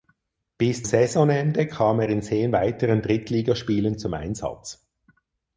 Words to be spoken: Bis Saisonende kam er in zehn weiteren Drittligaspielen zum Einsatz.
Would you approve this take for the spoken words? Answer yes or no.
yes